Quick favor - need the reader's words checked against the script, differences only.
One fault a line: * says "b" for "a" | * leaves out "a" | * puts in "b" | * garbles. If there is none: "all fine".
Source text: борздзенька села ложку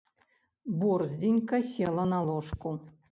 * puts in "на"